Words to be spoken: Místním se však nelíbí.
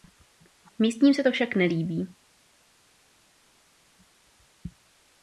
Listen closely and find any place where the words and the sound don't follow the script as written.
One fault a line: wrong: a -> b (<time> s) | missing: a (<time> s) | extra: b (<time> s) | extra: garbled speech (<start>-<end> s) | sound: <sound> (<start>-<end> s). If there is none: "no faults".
extra: to (1.2 s)